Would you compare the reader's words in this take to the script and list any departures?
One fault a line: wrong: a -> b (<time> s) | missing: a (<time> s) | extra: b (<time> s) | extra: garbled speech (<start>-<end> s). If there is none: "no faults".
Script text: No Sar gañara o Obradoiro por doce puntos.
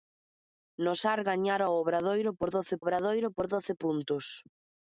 extra: Obradoiro por doce (2.8 s)